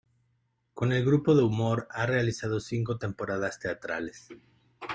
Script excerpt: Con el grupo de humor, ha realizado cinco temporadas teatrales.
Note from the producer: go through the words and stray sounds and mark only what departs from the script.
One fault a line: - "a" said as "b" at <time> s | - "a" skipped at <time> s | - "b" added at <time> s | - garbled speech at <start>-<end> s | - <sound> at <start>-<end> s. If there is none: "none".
none